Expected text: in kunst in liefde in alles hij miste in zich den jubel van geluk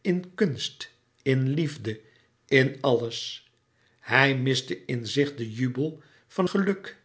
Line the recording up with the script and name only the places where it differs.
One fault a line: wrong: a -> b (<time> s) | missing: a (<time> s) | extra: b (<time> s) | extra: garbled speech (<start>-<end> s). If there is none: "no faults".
no faults